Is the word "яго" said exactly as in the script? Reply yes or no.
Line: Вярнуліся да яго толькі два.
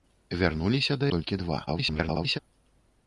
no